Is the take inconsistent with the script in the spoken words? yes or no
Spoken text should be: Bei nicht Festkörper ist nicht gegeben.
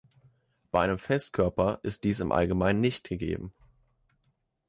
yes